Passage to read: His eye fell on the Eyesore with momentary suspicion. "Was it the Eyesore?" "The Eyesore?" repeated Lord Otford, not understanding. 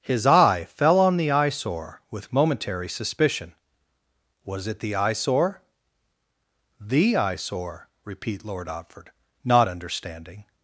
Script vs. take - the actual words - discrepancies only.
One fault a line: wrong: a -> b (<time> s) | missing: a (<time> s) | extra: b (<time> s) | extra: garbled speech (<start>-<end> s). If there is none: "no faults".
wrong: repeated -> repeat (8.0 s)